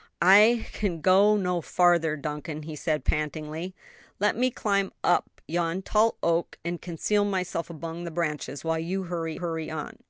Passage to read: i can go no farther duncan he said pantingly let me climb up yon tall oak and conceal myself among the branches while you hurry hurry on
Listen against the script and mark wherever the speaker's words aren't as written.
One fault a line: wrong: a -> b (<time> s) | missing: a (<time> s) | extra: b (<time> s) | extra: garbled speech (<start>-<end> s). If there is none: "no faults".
no faults